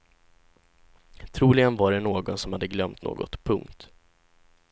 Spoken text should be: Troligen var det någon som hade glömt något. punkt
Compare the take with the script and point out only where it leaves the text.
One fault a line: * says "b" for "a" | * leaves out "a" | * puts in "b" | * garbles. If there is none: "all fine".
all fine